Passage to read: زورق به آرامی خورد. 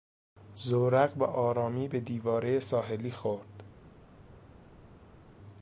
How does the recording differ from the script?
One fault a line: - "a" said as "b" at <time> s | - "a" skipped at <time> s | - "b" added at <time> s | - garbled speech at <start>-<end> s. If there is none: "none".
- "به دیوارهی ساحلی" added at 1.8 s